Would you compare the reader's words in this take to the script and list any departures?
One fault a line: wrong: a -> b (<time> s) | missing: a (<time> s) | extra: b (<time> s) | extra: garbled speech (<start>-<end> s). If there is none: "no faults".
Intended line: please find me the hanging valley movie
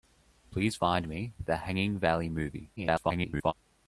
extra: garbled speech (2.8-3.5 s)